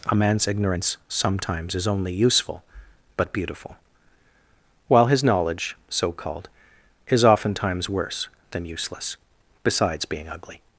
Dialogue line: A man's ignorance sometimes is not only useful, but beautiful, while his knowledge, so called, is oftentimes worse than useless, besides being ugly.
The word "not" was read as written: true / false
false